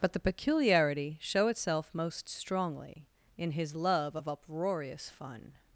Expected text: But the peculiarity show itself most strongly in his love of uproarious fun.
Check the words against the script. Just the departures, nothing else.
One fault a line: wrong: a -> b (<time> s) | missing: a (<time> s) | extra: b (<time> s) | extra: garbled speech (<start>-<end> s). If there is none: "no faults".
no faults